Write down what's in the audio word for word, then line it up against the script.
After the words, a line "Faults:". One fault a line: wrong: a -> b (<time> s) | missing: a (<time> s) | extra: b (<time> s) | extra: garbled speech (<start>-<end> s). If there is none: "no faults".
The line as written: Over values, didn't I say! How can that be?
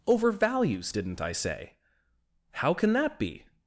Over values, didn't I say! How can that be?
Faults:
no faults